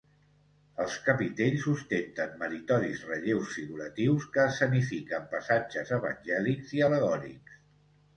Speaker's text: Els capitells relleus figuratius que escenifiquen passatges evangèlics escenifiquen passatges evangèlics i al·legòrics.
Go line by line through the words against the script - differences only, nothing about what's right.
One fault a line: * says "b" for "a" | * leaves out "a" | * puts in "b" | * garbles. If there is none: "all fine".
* puts in "ostenten meritoris"
* leaves out "escenifiquen passatges evangèlics"